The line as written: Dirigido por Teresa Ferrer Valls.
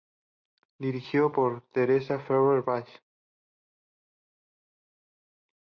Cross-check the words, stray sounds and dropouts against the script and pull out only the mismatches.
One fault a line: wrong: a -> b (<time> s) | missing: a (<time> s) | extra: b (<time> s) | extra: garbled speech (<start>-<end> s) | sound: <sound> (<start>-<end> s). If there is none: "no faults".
no faults